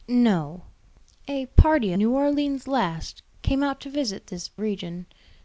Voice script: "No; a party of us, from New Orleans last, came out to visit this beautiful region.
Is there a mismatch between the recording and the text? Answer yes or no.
yes